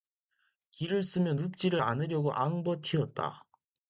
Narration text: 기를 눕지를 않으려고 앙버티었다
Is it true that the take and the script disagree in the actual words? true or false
true